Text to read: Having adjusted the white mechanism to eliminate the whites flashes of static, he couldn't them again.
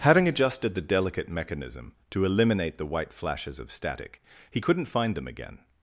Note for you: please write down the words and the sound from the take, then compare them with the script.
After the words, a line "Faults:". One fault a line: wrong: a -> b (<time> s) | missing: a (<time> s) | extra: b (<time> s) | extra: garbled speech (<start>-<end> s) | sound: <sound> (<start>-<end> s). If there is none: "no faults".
Having adjusted the delicate mechanism to eliminate the white flashes of static, he couldn't find them again.
Faults:
wrong: white -> delicate (0.8 s)
wrong: whites -> white (2.9 s)
extra: find (4.8 s)